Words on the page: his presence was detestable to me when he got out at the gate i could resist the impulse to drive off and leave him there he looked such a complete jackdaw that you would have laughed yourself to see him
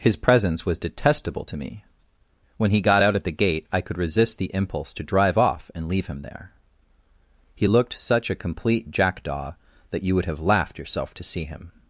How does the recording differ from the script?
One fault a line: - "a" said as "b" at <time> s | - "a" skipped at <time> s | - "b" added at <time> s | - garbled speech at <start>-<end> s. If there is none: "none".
none